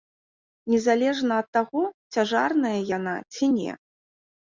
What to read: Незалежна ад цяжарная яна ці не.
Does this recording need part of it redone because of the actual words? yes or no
yes